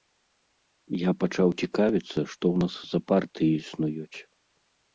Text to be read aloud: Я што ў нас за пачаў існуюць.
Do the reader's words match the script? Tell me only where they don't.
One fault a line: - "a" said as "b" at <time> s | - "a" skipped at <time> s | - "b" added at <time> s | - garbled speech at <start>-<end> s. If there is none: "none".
- "пачаў цікавіцца" added at 1.2 s
- "пачаў" said as "партыі" at 3.1 s